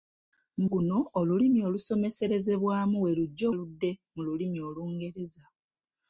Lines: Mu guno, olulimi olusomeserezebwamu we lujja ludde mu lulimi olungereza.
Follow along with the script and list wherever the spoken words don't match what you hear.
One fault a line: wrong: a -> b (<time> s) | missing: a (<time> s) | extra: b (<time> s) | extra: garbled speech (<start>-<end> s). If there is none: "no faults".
no faults